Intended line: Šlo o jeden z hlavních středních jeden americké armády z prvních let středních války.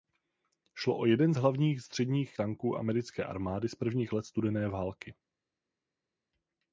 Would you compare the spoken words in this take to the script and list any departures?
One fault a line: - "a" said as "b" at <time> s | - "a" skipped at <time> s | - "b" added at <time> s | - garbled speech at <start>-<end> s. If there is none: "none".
- "jeden" said as "tanků" at 2.3 s
- "středních" said as "studené" at 4.3 s